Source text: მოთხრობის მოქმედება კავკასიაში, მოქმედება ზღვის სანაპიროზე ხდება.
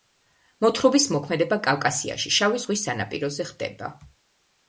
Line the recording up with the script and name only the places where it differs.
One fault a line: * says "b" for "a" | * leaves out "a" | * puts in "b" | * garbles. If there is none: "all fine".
* says "შავი" for "მოქმედება"